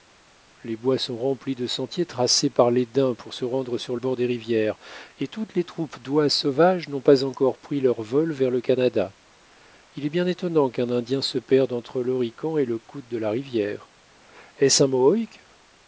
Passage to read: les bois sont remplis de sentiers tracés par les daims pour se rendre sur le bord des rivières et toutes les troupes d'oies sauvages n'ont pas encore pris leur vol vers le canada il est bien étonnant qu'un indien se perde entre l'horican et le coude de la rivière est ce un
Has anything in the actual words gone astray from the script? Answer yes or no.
yes